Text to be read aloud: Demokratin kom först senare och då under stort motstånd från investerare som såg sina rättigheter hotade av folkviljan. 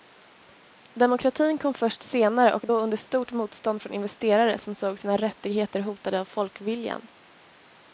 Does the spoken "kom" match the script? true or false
true